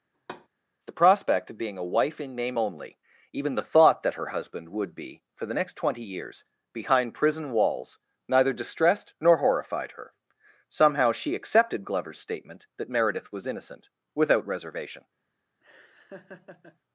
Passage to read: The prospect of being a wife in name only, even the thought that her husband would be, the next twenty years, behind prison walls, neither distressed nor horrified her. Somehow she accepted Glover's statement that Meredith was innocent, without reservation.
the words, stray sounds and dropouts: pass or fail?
fail